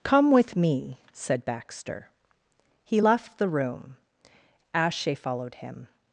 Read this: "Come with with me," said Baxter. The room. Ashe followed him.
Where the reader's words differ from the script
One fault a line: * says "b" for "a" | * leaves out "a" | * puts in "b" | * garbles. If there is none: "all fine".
* leaves out "with"
* puts in "He left"